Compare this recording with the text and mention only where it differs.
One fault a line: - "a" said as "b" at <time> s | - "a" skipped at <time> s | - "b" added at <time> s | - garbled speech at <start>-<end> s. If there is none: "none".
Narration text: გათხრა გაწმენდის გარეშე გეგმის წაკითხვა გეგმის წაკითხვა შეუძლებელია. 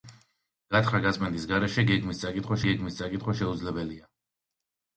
none